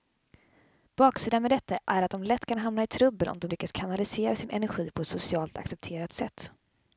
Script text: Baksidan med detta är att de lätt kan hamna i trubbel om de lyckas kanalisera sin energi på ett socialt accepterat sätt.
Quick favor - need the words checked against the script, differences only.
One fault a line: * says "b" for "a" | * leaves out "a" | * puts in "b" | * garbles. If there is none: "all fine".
all fine